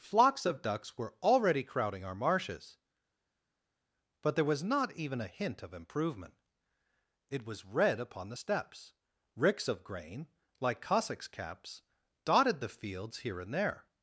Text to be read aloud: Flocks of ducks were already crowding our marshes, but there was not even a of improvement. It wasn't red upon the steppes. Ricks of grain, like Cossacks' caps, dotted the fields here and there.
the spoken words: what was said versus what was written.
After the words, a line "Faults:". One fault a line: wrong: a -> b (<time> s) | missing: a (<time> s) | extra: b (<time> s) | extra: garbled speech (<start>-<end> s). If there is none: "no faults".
Flocks of ducks were already crowding our marshes, but there was not even a hint of improvement. It was red upon the steppes. Ricks of grain, like Cossacks' caps, dotted the fields here and there.
Faults:
extra: hint (5.3 s)
wrong: wasn't -> was (7.4 s)